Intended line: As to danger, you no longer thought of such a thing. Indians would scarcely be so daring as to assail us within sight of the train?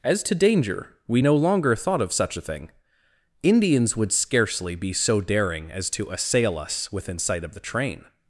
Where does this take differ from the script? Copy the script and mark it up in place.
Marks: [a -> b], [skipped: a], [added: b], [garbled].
As to danger, [you -> we] no longer thought of such a thing. Indians would scarcely be so daring as to assail us within sight of the train?